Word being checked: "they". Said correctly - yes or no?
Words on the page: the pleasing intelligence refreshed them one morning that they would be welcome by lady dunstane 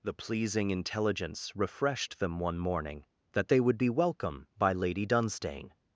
yes